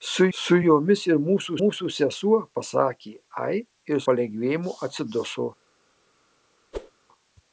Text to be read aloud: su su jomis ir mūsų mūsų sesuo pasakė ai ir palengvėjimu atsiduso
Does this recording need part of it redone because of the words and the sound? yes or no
yes